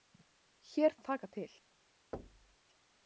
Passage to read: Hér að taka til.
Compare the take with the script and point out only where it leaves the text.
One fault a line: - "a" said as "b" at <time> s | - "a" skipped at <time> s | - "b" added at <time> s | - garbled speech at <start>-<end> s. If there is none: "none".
none